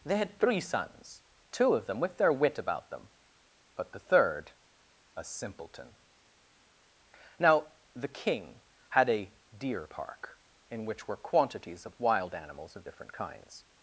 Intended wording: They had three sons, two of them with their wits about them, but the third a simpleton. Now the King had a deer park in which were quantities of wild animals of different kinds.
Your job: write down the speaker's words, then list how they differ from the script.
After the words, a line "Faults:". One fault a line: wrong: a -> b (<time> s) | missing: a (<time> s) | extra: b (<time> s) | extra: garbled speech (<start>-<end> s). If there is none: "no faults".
They had three sons, two of them with their wit about them, but the third a simpleton. Now the King had a deer park in which were quantities of wild animals of different kinds.
Faults:
wrong: wits -> wit (2.3 s)